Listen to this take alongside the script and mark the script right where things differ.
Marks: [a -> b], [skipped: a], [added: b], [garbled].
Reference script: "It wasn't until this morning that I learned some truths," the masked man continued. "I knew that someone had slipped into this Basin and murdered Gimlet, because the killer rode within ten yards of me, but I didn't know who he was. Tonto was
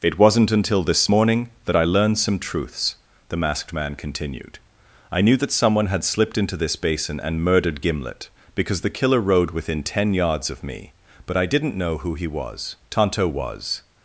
"It wasn't until this morning that I learned some truths," the masked man continued. "I knew that someone had slipped into this Basin and murdered Gimlet, because the killer rode within ten yards of me, but I didn't know who he was. Tonto was